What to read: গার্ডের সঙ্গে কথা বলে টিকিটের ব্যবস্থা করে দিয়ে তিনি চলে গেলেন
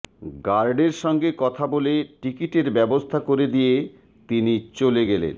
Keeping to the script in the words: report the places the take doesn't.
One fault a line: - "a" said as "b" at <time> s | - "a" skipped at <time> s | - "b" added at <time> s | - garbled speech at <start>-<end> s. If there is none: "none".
none